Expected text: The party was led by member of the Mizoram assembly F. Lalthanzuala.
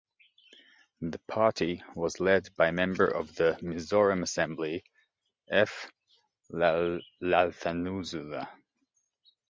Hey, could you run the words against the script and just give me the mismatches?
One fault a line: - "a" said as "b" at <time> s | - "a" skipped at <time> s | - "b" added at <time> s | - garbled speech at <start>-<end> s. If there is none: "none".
none